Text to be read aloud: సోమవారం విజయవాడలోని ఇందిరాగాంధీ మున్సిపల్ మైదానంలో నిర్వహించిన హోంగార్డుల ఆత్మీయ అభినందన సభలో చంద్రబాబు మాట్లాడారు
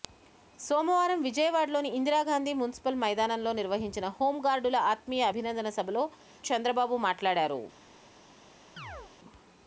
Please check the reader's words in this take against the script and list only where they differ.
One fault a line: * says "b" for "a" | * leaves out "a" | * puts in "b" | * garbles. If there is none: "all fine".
all fine